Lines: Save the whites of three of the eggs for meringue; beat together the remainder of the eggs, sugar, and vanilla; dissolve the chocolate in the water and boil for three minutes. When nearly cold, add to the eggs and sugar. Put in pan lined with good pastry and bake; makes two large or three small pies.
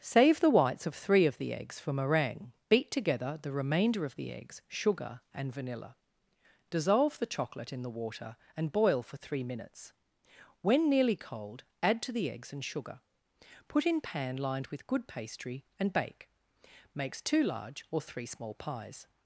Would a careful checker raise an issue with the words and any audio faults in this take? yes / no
no